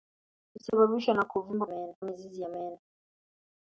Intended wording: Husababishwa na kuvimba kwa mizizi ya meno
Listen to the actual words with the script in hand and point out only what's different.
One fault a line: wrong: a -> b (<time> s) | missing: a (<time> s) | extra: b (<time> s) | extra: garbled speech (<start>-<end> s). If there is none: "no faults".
wrong: kwa -> meno (1.6 s)